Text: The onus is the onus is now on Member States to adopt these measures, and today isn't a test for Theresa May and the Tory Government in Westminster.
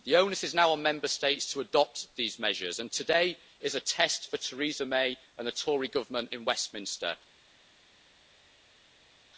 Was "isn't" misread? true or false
true